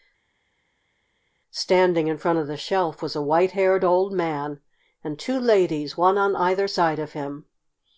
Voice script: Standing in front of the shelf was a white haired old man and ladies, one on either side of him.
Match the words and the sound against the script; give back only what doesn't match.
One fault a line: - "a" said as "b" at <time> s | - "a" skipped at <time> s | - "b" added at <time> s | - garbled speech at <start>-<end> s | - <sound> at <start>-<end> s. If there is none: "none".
- "two" added at 5.2 s